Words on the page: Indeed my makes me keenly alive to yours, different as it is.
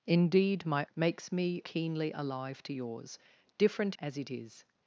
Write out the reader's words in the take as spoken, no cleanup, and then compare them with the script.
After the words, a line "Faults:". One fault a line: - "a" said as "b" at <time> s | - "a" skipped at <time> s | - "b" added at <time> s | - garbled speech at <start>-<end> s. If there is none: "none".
Indeed my makes me keenly alive to yours, different as it is.
Faults:
none